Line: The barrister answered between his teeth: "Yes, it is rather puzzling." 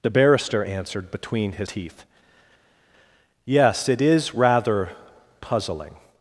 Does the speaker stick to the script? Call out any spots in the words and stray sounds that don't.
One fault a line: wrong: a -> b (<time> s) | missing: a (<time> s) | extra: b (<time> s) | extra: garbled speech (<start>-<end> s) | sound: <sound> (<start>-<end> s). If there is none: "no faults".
no faults